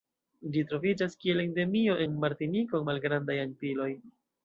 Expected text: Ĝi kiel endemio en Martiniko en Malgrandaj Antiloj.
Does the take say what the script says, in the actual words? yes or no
no